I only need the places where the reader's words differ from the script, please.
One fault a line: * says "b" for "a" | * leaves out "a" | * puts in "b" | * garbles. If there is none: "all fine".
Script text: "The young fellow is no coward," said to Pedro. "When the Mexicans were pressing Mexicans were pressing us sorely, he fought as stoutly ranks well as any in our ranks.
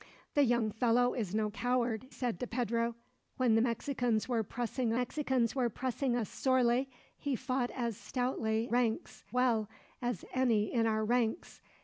all fine